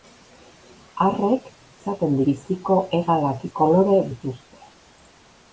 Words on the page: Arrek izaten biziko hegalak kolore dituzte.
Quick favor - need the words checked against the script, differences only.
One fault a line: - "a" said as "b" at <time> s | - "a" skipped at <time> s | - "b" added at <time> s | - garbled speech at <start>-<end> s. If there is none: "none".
none